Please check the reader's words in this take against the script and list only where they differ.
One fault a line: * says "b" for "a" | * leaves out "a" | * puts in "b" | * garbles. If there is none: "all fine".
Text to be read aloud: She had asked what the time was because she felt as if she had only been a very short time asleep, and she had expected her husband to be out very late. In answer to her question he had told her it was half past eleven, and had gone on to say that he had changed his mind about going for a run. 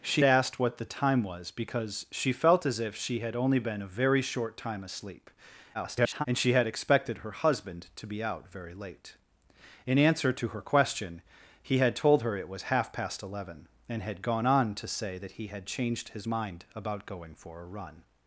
* leaves out "had"
* garbles